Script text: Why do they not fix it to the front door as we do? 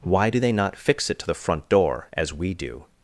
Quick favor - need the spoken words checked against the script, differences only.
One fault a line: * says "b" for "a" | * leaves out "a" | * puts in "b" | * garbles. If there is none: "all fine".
all fine